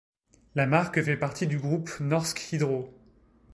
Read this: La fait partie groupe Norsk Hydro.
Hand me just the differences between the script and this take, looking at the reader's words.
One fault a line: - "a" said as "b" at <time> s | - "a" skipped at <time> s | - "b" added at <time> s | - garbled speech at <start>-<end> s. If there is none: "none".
- "marque" added at 0.7 s
- "du" added at 1.4 s